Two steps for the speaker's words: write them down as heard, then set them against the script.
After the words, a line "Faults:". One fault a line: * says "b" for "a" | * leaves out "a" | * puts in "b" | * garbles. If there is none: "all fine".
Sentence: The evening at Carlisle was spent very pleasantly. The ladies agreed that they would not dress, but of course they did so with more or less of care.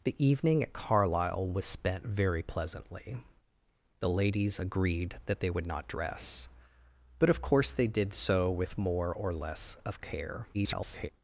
The evening at Carlisle was spent very pleasantly. The ladies agreed that they would not dress, but of course they did so with more or less of care. [garbled]
Faults:
* garbles